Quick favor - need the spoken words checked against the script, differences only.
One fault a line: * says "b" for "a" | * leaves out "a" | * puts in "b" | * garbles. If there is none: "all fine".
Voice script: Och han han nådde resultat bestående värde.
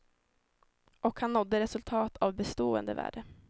* leaves out "han"
* puts in "av"